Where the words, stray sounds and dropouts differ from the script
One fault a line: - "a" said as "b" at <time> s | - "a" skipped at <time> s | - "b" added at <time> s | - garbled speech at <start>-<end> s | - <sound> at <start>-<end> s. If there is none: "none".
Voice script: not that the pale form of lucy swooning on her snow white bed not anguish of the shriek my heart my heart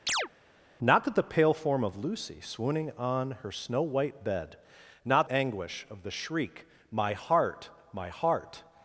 - chirp at 0.1-0.3 s